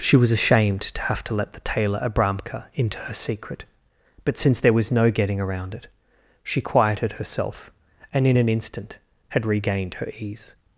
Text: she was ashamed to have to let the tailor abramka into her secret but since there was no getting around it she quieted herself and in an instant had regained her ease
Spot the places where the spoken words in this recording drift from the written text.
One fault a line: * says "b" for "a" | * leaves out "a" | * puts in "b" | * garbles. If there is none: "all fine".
all fine